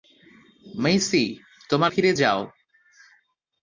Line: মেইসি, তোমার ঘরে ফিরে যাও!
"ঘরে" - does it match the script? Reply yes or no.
no